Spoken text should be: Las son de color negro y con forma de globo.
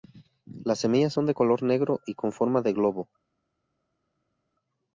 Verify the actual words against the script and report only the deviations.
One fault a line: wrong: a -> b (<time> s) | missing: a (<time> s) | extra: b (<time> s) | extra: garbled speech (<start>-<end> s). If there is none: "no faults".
extra: semillas (0.8 s)